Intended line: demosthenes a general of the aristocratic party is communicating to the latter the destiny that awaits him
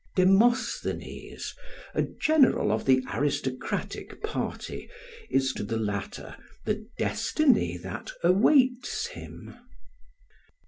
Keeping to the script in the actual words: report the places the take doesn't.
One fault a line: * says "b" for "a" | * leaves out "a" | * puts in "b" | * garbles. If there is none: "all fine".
* leaves out "communicating"